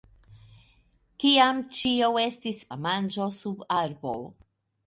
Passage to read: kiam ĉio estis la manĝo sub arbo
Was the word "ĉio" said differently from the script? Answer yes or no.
no